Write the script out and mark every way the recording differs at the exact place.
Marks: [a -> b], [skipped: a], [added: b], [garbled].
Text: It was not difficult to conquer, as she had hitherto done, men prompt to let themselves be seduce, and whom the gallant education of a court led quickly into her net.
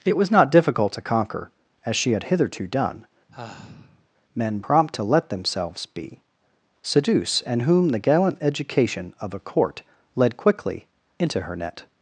It was not difficult to conquer, as she had hitherto done, men prompt to let themselves be seduce, and whom the gallant education of a court led quickly into her net.